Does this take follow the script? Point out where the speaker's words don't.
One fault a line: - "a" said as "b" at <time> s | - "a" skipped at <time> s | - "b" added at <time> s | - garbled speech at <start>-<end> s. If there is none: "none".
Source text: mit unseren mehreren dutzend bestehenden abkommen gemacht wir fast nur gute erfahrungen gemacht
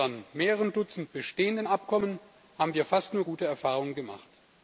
- "gemacht" said as "haben" at 2.6 s